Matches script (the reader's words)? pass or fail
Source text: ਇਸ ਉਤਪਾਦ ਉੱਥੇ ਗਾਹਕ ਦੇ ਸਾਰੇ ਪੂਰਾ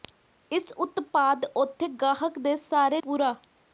pass